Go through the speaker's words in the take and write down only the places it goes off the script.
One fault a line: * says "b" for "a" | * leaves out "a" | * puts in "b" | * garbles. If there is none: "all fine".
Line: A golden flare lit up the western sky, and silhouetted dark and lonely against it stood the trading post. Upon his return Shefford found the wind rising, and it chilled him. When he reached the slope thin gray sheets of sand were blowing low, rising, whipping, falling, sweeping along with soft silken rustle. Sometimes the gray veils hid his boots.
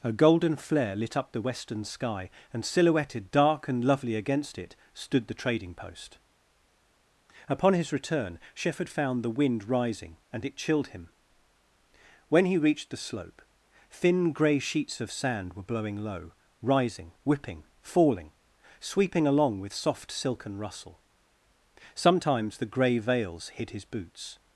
* says "lovely" for "lonely"